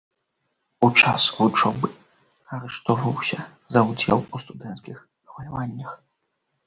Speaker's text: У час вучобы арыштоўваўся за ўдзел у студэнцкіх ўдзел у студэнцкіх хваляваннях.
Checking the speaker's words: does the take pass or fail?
fail